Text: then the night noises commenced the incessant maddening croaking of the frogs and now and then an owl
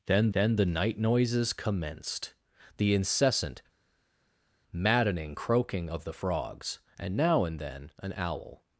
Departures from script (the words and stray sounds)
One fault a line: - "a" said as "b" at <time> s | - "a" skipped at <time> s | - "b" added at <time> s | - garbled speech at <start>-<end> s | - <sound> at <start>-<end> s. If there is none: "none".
- "then" added at 0.3 s